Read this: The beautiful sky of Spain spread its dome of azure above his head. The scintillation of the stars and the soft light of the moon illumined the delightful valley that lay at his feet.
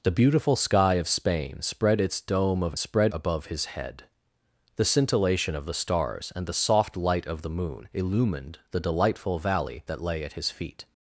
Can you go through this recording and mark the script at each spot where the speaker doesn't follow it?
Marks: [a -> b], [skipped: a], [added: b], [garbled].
The beautiful sky of Spain spread its dome of [azure -> spread] above his head. The scintillation of the stars and the soft light of the moon illumined the delightful valley that lay at his feet.